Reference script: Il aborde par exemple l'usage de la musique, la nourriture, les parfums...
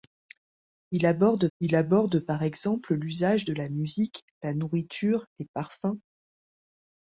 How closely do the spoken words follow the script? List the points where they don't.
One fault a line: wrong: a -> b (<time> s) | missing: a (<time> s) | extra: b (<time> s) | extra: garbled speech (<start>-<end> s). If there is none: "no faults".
extra: il aborde (1.6 s)